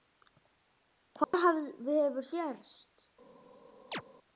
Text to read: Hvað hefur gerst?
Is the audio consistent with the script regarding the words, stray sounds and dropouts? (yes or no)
no